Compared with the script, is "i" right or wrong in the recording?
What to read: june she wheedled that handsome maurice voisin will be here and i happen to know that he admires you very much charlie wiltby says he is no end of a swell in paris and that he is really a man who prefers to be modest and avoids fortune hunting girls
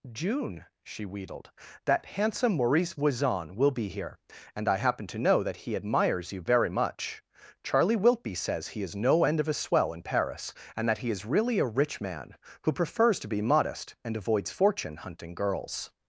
right